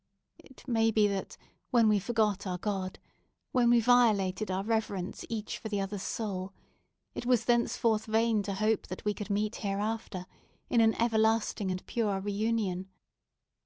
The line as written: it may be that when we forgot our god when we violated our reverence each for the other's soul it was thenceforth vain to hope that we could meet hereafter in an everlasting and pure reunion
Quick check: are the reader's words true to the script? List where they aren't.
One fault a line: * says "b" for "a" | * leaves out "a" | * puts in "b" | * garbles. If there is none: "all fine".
all fine